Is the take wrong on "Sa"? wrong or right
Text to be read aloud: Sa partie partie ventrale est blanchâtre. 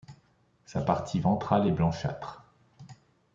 right